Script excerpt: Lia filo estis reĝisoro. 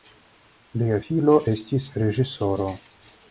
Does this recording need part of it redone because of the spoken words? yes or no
no